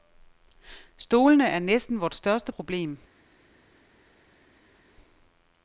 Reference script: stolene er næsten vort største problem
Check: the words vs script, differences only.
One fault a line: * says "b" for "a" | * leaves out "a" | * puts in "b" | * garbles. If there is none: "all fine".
all fine